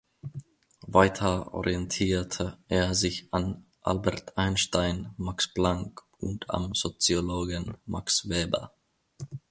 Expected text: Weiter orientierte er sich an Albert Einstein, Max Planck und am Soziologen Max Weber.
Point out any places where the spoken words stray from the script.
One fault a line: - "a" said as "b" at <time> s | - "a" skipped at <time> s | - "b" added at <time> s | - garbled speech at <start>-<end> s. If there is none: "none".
none